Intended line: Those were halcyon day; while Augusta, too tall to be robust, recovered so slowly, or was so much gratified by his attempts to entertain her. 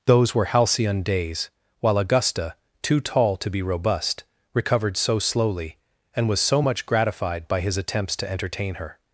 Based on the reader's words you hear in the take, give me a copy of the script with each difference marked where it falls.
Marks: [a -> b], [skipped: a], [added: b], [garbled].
Those were halcyon [day; -> days] while Augusta, too tall to be robust, recovered so slowly, [or -> and] was so much gratified by his attempts to entertain her.